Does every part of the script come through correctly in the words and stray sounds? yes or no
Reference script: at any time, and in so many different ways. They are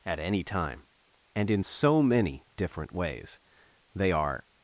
yes